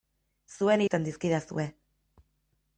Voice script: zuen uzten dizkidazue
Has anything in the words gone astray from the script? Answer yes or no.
no